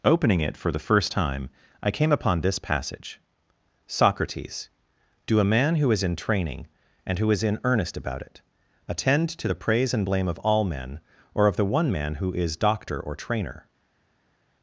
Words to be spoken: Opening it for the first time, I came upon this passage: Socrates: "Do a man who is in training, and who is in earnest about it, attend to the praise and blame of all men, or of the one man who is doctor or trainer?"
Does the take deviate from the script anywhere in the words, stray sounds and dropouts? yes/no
no